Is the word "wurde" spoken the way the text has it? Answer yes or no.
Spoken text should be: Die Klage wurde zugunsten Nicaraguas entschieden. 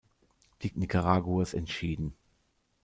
no